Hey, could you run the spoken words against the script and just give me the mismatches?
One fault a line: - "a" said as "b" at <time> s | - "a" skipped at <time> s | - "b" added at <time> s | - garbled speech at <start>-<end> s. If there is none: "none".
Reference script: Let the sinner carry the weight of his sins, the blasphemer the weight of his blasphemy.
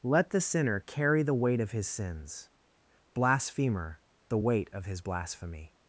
- "the" skipped at 2.5 s